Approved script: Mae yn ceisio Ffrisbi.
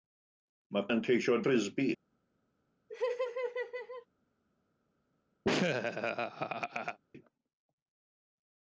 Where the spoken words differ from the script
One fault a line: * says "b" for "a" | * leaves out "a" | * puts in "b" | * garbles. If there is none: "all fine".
all fine